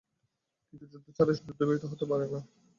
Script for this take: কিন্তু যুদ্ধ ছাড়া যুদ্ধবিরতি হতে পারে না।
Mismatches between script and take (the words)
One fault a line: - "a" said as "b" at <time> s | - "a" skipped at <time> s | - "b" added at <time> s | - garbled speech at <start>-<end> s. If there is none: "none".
none